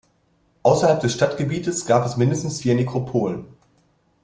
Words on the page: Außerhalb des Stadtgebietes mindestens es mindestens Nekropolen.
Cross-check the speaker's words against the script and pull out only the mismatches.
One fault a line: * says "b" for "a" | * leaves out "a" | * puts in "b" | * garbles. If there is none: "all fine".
* says "gab" for "mindestens"
* puts in "vier"